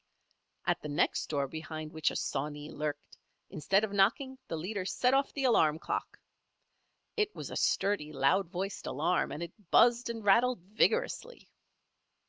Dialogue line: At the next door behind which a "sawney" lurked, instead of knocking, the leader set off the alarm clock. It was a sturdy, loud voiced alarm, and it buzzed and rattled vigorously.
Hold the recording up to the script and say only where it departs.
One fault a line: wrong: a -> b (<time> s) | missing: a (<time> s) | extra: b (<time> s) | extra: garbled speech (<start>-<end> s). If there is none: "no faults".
no faults